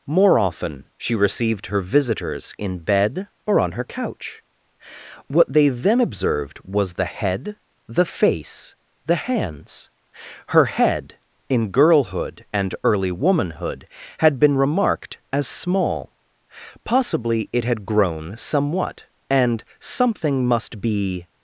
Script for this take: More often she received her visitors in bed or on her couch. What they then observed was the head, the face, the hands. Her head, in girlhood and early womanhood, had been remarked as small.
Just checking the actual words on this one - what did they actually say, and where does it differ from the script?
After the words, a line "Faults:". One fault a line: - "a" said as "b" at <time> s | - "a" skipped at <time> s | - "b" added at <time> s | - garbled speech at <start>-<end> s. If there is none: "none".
More often she received her visitors in bed or on her couch. What they then observed was the head, the face, the hands. Her head, in girlhood and early womanhood, had been remarked as small. Possibly it had grown somewhat, and something must be
Faults:
- "Possibly it had grown somewhat and something must be" added at 16.8 s